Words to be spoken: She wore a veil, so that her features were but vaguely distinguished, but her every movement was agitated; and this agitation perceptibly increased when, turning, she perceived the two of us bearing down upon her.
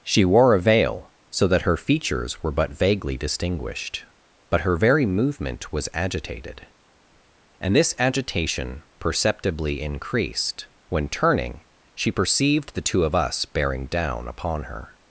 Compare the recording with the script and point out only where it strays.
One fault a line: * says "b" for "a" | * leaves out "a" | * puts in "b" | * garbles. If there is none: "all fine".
* says "very" for "every"